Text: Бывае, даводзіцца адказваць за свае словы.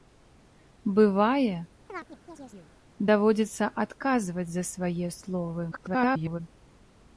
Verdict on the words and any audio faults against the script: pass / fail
fail